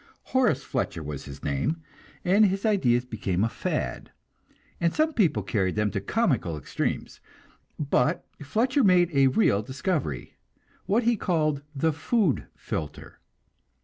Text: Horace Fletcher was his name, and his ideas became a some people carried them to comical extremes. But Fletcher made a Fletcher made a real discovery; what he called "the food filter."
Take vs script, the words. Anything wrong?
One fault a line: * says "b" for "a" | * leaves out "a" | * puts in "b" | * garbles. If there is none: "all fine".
* puts in "fad and"
* leaves out "Fletcher made a"